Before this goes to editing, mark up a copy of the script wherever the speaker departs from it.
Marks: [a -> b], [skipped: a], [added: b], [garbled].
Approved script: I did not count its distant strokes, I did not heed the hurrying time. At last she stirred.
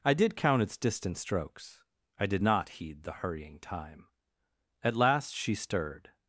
I did [skipped: not] count its distant strokes, I did not heed the hurrying time. At last she stirred.